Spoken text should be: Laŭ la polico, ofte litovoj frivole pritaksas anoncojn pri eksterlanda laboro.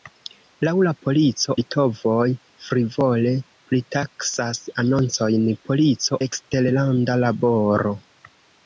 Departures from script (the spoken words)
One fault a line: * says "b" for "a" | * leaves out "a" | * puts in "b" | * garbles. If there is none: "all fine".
* leaves out "ofte"
* says "polico" for "pri"